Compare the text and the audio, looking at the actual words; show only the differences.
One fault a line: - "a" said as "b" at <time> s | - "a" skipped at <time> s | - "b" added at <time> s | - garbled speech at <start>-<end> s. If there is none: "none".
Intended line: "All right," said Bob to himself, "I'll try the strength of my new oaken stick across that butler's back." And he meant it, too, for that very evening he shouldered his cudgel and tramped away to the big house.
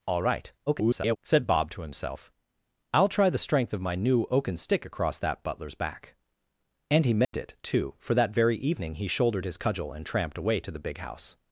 - garbled speech at 0.7-1.2 s